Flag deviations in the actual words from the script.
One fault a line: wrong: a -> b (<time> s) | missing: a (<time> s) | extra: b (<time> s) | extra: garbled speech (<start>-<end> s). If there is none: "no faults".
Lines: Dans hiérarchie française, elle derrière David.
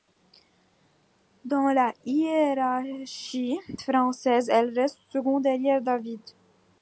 extra: la (1.7 s)
extra: reste seconde (4.8 s)